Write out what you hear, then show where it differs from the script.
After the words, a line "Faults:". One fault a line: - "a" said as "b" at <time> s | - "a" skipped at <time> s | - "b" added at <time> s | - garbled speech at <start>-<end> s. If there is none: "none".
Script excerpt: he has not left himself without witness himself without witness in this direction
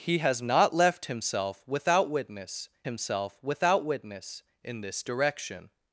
he has not left himself without witness himself without witness in this direction
Faults:
none